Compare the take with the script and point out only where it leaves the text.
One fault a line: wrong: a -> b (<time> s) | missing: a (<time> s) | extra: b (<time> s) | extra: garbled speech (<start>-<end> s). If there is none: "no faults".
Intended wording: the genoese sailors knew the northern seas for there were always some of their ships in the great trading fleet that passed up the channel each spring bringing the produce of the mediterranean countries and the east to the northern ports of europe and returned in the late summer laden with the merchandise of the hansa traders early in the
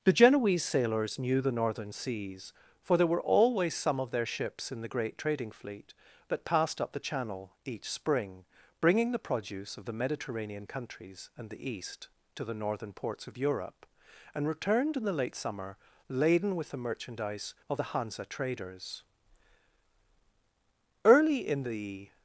no faults